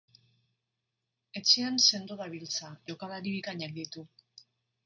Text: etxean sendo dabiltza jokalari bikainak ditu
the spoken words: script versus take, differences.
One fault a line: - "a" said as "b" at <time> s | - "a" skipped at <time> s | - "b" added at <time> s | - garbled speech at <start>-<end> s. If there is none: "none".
none